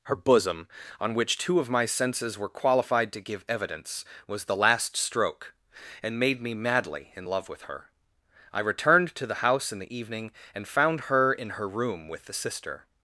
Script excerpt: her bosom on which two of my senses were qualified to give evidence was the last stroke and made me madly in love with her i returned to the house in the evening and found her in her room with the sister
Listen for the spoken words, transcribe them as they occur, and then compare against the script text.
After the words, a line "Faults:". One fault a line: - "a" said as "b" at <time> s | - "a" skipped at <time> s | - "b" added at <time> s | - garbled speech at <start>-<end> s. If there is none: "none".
her bosom on which two of my senses were qualified to give evidence was the last stroke and made me madly in love with her i returned to the house in the evening and found her in her room with the sister
Faults:
none